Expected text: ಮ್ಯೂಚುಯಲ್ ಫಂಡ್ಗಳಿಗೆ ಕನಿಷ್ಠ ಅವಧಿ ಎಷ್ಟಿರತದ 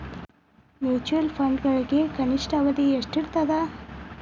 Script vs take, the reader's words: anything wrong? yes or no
no